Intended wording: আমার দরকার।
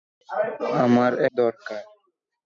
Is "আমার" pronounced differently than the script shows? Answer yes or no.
no